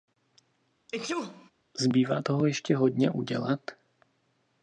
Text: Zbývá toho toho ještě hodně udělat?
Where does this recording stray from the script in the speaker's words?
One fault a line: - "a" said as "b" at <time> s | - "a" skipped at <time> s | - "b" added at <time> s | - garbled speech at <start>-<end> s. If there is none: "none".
- "toho" skipped at 2.5 s